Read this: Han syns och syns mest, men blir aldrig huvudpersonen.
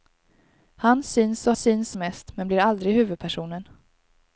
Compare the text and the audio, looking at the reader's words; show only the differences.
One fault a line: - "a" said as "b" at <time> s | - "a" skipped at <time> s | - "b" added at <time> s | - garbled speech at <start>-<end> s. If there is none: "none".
none